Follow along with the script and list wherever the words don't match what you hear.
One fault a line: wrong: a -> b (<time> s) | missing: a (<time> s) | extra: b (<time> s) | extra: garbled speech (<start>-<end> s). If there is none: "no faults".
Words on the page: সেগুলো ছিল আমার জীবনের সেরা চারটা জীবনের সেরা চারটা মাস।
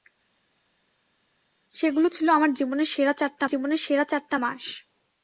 no faults